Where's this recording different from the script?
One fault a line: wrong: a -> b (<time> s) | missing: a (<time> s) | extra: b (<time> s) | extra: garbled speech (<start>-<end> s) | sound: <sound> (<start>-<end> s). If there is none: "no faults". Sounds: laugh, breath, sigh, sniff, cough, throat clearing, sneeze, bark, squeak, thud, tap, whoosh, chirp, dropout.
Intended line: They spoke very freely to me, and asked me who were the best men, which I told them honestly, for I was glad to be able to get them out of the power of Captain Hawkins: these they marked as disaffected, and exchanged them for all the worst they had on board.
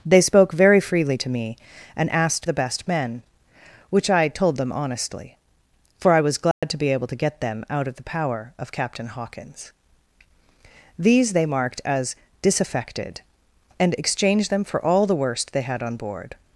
missing: me who were (2.5 s)
sound: dropout (6.5-6.6 s)